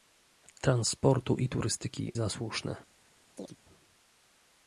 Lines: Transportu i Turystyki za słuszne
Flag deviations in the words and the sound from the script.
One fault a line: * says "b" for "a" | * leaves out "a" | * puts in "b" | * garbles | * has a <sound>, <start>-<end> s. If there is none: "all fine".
* has a chirp, 3.4-3.6 s